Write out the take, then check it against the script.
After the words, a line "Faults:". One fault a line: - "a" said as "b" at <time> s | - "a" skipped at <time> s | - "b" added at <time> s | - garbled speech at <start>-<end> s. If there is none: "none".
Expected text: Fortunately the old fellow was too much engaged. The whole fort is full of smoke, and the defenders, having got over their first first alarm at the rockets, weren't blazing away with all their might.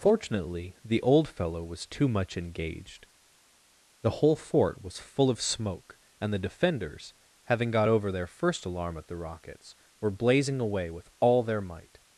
Fortunately the old fellow was too much engaged. The whole fort was full of smoke, and the defenders, having got over their first alarm at the rockets, were blazing away with all their might.
Faults:
- "is" said as "was" at 4.8 s
- "first" skipped at 8.6 s
- "weren't" said as "were" at 10.0 s